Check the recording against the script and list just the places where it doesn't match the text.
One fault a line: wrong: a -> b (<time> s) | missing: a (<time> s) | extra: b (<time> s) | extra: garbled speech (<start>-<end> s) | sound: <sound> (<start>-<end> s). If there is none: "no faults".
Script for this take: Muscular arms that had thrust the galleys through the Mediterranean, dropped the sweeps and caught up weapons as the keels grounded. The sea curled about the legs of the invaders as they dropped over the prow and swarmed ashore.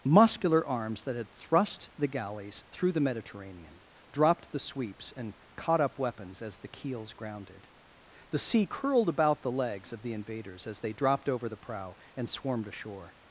no faults